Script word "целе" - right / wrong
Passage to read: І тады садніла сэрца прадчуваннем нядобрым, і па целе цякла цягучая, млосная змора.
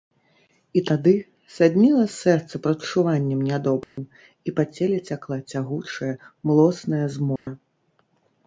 right